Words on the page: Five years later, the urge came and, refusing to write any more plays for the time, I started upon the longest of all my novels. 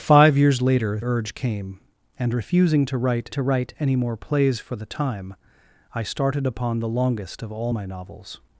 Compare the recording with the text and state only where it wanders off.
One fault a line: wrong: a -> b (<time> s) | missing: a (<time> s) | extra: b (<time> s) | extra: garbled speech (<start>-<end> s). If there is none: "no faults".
missing: the (1.0 s)
extra: to write (3.3 s)